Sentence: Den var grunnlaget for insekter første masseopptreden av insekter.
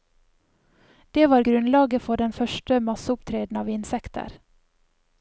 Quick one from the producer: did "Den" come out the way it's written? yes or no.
no